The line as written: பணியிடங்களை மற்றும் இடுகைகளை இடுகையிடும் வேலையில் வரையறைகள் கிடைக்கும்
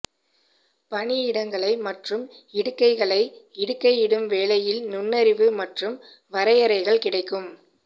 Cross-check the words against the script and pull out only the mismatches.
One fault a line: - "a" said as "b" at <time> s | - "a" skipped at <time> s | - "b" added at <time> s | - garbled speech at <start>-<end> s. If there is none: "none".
- "நுண்ணறிவு மற்றும்" added at 4.9 s